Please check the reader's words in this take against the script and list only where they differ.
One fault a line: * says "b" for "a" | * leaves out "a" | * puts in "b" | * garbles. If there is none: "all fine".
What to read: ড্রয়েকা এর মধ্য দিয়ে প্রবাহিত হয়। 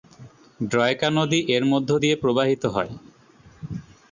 * puts in "নদী"